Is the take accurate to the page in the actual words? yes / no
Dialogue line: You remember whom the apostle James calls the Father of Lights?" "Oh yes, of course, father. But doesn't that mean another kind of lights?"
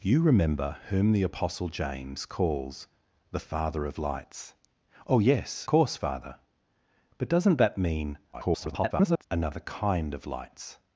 no